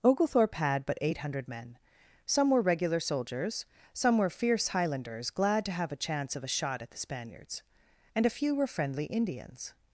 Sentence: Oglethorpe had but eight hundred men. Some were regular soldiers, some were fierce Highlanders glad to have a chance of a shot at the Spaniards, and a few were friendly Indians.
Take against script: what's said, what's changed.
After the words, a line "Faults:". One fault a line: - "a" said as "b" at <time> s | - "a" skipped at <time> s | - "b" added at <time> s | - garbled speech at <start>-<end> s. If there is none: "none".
Oglethorpe had but eight hundred men. Some were regular soldiers, some were fierce Highlanders glad to have a chance of a shot at the Spaniards, and a few were friendly Indians.
Faults:
none